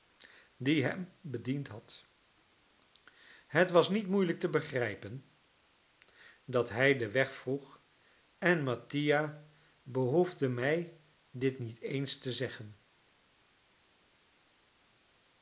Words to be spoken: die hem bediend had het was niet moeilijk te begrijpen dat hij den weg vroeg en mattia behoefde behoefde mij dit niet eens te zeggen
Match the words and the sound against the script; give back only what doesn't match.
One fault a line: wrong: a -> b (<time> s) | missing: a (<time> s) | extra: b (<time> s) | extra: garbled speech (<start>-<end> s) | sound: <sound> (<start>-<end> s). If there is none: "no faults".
missing: behoefde (10.5 s)